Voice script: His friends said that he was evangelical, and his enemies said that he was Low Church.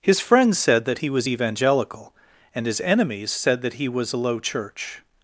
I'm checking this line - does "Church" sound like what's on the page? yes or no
yes